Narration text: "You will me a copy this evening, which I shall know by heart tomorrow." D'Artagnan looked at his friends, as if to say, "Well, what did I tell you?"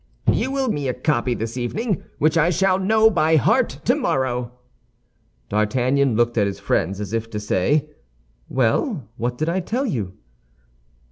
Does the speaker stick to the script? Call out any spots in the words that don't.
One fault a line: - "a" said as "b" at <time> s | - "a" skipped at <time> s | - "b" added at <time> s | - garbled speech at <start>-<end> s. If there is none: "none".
none